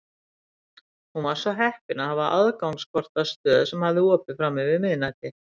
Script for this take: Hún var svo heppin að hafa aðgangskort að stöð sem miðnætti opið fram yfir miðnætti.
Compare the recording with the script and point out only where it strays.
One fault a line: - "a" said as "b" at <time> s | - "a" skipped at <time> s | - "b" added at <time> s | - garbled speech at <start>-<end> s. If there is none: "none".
- "miðnætti" said as "hafði" at 3.9 s